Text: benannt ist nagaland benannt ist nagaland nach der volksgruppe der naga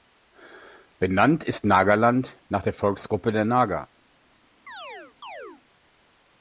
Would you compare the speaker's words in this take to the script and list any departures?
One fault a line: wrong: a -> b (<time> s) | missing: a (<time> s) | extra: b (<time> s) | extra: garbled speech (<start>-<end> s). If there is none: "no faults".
missing: benannt ist nagaland (2.4 s)